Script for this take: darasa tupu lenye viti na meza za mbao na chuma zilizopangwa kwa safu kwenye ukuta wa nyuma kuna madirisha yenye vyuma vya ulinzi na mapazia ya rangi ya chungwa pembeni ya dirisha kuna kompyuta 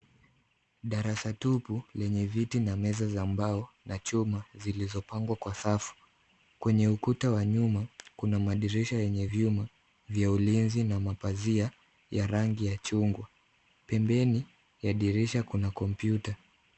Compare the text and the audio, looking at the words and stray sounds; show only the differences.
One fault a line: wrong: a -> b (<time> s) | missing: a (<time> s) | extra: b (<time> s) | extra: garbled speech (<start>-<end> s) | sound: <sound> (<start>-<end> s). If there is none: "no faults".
no faults